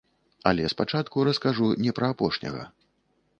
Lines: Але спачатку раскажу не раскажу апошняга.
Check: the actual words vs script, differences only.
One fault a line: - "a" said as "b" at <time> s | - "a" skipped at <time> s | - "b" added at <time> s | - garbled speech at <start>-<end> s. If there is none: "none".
- "раскажу" said as "пра" at 2.0 s